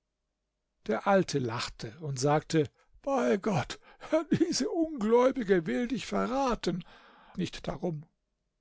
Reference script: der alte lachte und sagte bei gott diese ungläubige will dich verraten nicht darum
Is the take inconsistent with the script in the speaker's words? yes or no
no